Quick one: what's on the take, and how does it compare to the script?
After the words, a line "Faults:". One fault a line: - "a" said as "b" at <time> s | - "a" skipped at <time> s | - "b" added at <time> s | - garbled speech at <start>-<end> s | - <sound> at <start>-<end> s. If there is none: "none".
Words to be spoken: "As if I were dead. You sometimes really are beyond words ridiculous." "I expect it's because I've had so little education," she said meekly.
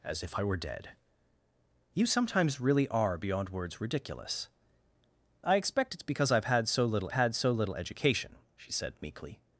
"As if I were dead. You sometimes really are beyond words ridiculous." "I expect it's because I've had so little had so little education," she said meekly.
Faults:
- "had so little" added at 7.1 s